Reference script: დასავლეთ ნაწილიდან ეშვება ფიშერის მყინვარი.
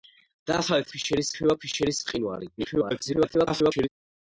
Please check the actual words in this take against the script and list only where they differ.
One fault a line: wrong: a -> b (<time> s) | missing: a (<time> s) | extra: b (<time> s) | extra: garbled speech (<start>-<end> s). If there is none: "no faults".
wrong: ნაწილიდან -> ფიშერის (1.0 s)
extra: garbled speech (2.6-3.9 s)